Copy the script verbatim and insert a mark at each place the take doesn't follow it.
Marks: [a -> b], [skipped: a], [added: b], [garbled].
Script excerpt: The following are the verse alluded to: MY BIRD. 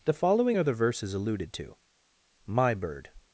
The following are the [verse -> verses] alluded to: MY BIRD.